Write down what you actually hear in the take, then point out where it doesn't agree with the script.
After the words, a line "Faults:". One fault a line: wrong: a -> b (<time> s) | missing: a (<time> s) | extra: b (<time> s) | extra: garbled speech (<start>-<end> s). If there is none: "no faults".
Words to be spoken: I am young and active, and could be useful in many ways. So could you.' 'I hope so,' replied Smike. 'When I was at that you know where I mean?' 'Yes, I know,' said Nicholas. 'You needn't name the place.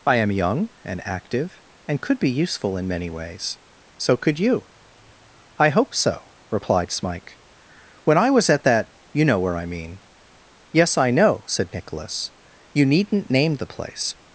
I am young and active, and could be useful in many ways. So could you.' 'I hope so,' replied Smike. 'When I was at that you know where I mean?' 'Yes, I know,' said Nicholas. 'You needn't name the place.
Faults:
no faults